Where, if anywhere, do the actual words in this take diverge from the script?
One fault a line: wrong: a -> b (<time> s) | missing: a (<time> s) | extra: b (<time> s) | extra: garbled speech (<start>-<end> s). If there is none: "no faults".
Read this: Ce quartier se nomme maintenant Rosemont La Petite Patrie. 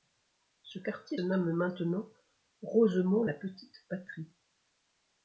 missing: se (1.2 s)